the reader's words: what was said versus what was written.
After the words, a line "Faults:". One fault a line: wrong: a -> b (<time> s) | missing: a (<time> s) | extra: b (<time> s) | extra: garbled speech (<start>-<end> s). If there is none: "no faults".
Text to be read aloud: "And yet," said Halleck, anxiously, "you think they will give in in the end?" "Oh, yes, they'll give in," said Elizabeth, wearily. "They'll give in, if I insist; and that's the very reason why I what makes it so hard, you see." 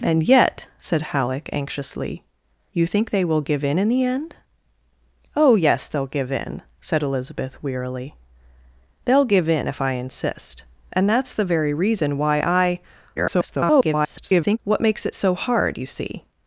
"And yet," said Halleck, anxiously, "you think they will give in in the end?" "Oh, yes, they'll give in," said Elizabeth, wearily. "They'll give in, if I insist; and that's the very reason why I [garbled] what makes it so hard, you see."
Faults:
extra: garbled speech (13.2-14.6 s)